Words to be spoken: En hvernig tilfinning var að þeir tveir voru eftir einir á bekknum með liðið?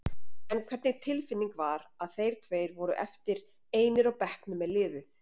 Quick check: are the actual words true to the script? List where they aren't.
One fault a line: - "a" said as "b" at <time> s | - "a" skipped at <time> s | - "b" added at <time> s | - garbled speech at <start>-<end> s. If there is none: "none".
none